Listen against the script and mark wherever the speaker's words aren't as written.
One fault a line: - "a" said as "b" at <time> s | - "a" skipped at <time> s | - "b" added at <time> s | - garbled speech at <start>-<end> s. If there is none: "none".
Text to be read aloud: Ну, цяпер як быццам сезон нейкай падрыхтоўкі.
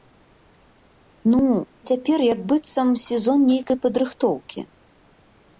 none